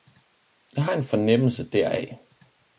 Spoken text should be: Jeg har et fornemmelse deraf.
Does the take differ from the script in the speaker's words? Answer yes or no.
yes